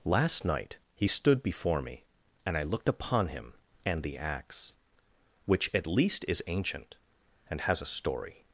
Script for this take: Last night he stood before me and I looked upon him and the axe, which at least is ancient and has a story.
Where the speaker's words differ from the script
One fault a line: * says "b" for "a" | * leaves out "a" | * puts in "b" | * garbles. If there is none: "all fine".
all fine